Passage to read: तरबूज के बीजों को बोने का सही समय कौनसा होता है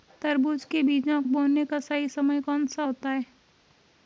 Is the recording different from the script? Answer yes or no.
yes